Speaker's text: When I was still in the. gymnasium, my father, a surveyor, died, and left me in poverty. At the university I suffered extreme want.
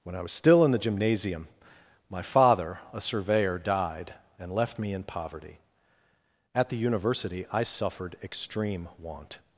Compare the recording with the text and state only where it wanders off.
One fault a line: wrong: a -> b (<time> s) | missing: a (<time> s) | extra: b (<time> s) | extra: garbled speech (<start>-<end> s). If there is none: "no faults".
no faults